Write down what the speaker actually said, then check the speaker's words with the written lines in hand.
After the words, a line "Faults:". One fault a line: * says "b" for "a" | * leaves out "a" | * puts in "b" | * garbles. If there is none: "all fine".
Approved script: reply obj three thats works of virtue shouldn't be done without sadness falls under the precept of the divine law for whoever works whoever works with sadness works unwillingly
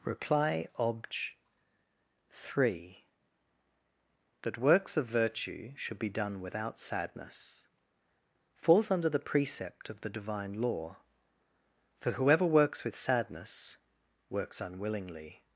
reply obj three that works of virtue should be done without sadness falls under the precept of the divine law for whoever works with sadness works unwillingly
Faults:
* says "that" for "thats"
* says "should" for "shouldn't"
* leaves out "whoever works"